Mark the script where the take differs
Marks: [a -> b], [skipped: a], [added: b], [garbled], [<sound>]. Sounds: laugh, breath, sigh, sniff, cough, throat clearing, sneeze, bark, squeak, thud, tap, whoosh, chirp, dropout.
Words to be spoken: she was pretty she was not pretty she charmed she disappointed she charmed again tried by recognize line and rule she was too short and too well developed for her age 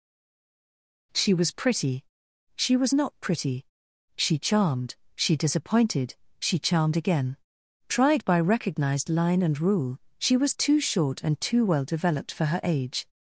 she was pretty she was not pretty she charmed she disappointed she charmed again tried by [recognize -> recognized] line and rule she was too short and too well developed for her age